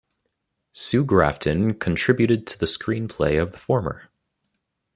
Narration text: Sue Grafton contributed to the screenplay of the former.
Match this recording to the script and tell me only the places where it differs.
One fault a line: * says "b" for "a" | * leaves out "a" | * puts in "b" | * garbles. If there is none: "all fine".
all fine